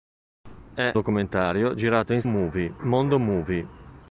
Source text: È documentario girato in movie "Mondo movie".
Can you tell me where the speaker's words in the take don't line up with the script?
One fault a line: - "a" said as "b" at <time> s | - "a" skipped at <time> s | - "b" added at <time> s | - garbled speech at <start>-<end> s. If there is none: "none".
none